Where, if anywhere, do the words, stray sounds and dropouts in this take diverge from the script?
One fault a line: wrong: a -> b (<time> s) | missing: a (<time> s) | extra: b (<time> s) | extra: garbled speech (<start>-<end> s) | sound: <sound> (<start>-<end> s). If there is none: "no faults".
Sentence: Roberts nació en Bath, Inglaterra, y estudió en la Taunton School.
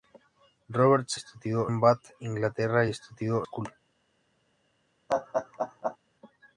wrong: nació -> estudió (1.1 s)
missing: en la Taunton (3.5 s)
sound: laugh (5.1-6.0 s)